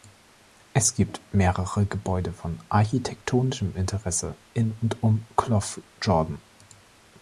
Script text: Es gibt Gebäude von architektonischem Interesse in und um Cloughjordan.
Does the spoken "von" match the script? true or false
true